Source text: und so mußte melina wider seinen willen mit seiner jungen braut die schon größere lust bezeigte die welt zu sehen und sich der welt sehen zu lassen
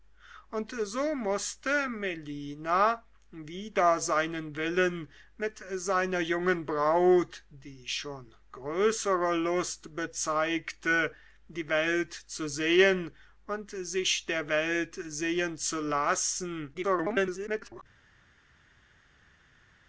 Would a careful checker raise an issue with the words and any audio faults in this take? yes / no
yes